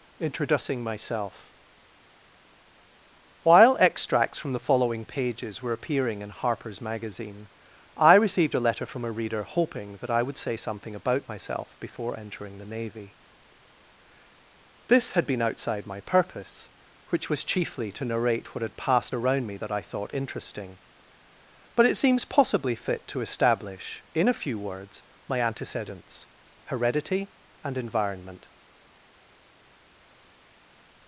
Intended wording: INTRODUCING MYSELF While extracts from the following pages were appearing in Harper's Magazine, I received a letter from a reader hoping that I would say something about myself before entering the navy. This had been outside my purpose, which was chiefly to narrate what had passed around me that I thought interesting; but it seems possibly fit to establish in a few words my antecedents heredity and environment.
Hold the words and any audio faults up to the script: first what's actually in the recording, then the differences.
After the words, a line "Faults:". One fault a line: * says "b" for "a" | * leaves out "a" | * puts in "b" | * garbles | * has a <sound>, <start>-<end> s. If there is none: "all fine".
INTRODUCING MYSELF While extracts from the following pages were appearing in Harper's Magazine, I received a letter from a reader hoping that I would say something about myself before entering the navy. This had been outside my purpose, which was chiefly to narrate what had passed around me that I thought interesting; but it seems possibly fit to establish in a few words my antecedents heredity and environment.
Faults:
all fine